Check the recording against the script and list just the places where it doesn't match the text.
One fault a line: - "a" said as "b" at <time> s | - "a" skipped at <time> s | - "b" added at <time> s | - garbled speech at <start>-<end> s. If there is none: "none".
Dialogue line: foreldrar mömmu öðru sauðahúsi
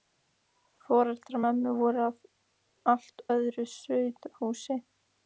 - "voru af allt" added at 1.8 s